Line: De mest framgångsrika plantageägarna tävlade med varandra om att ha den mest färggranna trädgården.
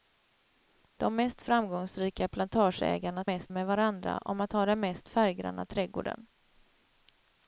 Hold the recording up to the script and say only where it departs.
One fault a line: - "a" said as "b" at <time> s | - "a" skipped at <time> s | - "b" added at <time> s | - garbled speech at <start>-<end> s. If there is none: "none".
- "tävlade" said as "mest" at 3.3 s